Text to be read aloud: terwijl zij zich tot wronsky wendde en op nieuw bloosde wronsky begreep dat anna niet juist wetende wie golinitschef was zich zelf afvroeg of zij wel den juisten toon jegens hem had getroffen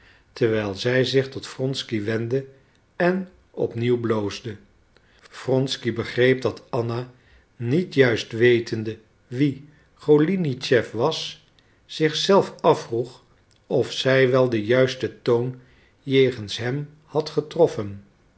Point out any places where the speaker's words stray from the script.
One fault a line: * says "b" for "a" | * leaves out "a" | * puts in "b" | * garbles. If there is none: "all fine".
all fine